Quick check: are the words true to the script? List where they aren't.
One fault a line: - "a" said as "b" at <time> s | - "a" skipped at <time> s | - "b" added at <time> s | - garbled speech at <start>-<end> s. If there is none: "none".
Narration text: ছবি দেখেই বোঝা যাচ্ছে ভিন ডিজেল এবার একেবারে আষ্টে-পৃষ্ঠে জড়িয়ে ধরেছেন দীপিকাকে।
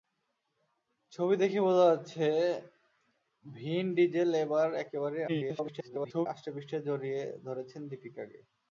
- garbled speech at 5.3-6.3 s